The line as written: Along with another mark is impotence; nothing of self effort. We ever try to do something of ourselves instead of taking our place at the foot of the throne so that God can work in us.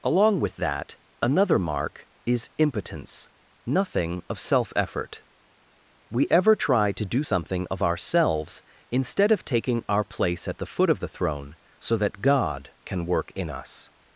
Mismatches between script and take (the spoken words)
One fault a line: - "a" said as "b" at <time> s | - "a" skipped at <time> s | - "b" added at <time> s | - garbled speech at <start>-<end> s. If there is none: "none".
- "that" added at 0.6 s